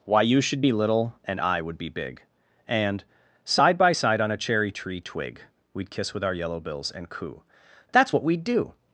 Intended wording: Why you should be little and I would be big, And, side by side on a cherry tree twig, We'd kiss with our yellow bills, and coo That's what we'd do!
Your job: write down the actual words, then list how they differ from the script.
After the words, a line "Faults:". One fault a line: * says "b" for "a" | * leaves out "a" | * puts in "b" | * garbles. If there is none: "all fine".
Why you should be little and I would be big, And, side by side on a cherry tree twig, We'd kiss with our yellow bills, and coo That's what we'd do!
Faults:
all fine